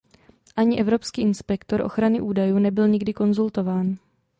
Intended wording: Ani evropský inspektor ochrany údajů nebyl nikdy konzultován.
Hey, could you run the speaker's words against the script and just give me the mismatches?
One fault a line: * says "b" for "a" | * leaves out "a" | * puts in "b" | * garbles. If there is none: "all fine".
all fine